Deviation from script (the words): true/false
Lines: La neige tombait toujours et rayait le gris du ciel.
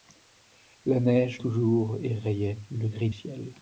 true